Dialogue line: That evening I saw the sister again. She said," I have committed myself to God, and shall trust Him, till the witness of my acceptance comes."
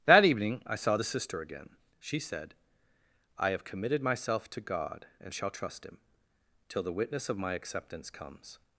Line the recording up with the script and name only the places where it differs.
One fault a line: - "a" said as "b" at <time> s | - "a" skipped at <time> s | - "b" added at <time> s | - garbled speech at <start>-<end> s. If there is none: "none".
none